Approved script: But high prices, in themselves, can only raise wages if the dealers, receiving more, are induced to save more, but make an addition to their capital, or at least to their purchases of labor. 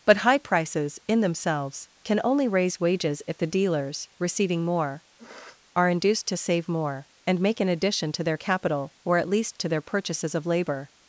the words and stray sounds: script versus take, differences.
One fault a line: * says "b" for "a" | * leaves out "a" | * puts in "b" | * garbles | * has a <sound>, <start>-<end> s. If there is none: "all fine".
* has a sniff, 5.2-5.6 s
* says "and" for "but"